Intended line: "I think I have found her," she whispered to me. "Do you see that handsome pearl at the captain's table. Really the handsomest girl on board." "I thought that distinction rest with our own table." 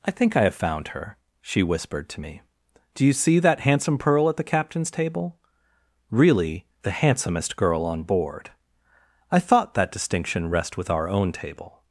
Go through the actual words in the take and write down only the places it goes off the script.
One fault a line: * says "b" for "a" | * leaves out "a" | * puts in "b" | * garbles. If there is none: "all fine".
all fine